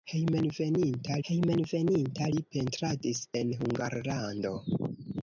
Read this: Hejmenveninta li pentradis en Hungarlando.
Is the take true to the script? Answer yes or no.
no